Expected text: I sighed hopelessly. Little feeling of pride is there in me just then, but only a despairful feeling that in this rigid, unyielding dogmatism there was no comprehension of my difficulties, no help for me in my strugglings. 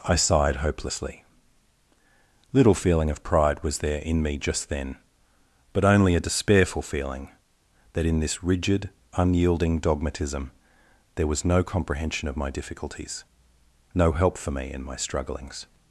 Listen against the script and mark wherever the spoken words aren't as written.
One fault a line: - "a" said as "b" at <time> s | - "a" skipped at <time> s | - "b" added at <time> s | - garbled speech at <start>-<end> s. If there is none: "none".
- "is" said as "was" at 3.6 s